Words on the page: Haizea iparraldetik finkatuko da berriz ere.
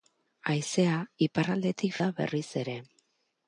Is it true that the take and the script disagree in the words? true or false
true